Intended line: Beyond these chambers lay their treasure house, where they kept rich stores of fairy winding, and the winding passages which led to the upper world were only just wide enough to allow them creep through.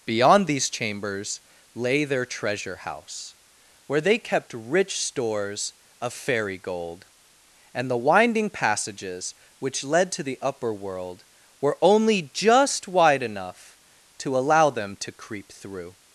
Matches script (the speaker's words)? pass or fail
fail